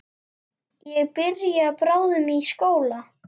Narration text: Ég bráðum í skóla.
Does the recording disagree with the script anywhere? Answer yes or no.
yes